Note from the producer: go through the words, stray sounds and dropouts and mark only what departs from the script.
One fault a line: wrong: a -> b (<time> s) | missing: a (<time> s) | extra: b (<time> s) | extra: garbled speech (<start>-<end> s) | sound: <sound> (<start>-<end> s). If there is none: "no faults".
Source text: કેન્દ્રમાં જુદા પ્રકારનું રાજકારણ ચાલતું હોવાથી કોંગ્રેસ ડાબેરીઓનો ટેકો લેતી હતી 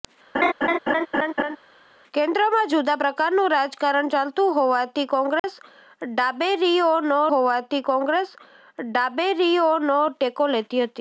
sound: laugh (0.3-1.6 s)
sound: dropout (5.4-5.4 s)
extra: હોવાથી કોંગ્રેસ ડાબેરીઓનો (7.3 s)